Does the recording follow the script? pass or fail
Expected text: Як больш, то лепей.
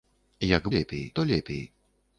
fail